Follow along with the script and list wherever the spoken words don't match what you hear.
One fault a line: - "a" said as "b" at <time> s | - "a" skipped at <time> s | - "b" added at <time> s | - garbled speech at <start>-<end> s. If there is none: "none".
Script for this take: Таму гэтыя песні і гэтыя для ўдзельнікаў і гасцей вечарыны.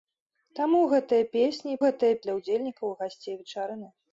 none